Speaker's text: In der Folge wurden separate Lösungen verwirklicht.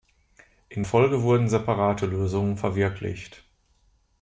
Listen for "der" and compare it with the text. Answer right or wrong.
wrong